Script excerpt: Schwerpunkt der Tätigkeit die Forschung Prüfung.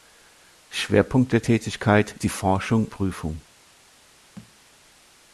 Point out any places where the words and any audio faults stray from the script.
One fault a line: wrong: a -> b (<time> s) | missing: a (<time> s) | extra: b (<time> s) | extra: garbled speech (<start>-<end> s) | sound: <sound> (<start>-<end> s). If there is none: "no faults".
sound: thud (4.4-4.5 s)